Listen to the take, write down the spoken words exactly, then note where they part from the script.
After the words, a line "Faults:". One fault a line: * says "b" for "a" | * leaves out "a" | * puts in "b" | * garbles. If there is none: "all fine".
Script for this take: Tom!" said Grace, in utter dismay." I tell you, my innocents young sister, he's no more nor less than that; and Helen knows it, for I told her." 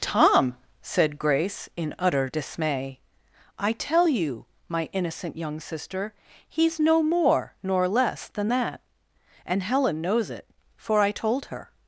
Tom!" said Grace, in utter dismay." I tell you, my innocent young sister, he's no more nor less than that; and Helen knows it, for I told her."
Faults:
* says "innocent" for "innocents"